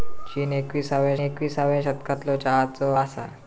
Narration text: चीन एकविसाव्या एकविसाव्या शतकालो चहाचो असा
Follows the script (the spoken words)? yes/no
yes